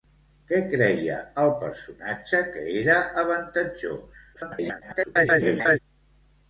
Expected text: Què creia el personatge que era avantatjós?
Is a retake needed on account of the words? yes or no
yes